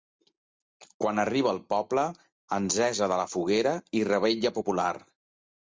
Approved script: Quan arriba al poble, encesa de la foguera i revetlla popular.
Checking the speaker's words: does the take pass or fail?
pass